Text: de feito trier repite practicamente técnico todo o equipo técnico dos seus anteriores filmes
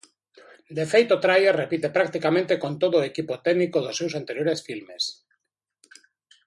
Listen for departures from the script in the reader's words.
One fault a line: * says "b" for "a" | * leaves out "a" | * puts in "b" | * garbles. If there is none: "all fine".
* says "con" for "técnico"